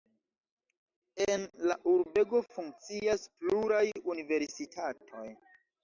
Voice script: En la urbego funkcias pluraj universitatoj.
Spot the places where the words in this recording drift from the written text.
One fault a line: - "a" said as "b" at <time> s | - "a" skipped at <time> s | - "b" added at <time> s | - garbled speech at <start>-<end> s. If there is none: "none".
none